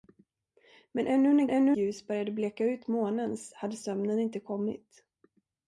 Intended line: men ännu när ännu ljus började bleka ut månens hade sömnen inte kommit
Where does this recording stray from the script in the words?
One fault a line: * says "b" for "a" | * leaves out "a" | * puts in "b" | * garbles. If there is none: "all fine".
all fine